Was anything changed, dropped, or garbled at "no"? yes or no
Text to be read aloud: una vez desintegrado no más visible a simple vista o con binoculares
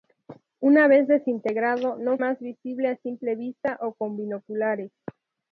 no